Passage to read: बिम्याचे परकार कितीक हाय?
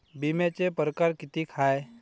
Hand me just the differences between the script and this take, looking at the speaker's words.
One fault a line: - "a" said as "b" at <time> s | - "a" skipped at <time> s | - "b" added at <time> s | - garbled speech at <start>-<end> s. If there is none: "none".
none